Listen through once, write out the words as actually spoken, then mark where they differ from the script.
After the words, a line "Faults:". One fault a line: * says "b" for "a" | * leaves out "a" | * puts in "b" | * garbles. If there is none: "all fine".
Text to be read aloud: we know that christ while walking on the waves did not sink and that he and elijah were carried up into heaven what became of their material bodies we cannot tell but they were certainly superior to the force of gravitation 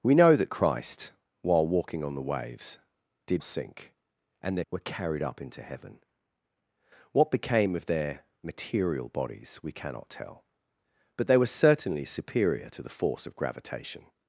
we know that christ while walking on the waves did sink and that were carried up into heaven what became of their material bodies we cannot tell but they were certainly superior to the force of gravitation
Faults:
* leaves out "not"
* leaves out "he and elijah"